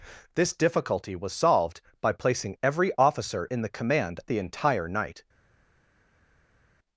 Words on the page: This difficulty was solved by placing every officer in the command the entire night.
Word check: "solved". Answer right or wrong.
right